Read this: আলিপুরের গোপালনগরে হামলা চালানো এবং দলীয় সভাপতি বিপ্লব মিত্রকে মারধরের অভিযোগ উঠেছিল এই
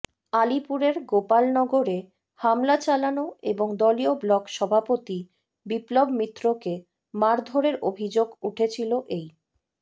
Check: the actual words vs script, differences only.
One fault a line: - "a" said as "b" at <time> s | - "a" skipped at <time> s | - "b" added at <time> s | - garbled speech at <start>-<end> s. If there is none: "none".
- "ব্লক" added at 4.2 s